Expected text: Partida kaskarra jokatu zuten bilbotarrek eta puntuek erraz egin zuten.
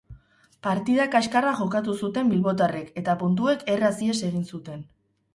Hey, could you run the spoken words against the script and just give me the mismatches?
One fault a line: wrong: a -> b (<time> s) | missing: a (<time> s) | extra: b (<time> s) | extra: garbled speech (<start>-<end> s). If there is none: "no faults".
extra: ihes (4.1 s)